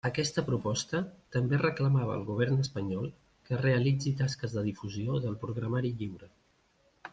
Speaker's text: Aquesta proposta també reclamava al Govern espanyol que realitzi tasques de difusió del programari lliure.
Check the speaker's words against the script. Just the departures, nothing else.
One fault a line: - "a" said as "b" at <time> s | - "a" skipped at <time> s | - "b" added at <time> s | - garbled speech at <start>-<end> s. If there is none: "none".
none